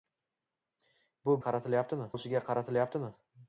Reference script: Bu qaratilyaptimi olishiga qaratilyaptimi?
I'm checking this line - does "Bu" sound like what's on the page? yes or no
yes